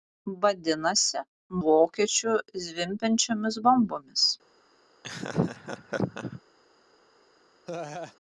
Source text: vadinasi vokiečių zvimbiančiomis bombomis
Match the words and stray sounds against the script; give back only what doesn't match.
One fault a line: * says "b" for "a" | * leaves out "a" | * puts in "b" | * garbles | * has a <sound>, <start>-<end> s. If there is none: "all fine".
* has a laugh, 5.0-6.4 s
* has a laugh, 7.7-8.2 s